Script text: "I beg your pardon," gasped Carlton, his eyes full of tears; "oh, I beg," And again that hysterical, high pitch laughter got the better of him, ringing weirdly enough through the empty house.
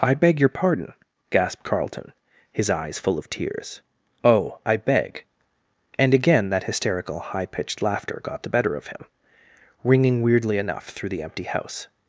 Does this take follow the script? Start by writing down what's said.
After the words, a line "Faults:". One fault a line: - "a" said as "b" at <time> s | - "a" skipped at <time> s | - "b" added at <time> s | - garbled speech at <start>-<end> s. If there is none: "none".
"I beg your pardon," gasped Carlton, his eyes full of tears; "oh, I beg," And again that hysterical, high pitched laughter got the better of him, ringing weirdly enough through the empty house.
Faults:
- "pitch" said as "pitched" at 7.5 s